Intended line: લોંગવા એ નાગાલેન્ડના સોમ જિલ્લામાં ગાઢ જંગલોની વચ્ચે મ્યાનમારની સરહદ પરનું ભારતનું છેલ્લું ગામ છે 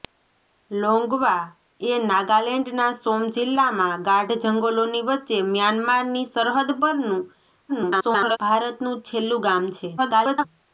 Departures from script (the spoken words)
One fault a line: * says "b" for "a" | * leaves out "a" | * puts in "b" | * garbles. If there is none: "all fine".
* garbles
* garbles